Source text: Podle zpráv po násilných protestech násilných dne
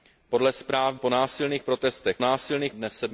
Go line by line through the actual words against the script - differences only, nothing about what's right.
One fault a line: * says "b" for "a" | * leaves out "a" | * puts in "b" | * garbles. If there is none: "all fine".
all fine